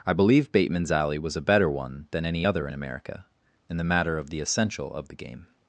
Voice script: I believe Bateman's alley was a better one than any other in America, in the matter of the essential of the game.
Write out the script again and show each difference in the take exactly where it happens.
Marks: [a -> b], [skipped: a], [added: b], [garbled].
I believe Bateman's alley was a better one than any other in America, in the matter of the essential of the game.